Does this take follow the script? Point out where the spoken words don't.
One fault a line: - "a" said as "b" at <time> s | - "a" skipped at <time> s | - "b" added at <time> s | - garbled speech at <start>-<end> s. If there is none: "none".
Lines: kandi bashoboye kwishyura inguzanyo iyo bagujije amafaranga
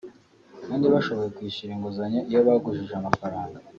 none